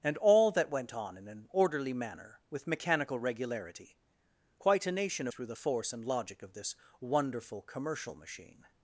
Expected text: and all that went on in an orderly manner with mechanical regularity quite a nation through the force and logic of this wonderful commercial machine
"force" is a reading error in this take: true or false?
false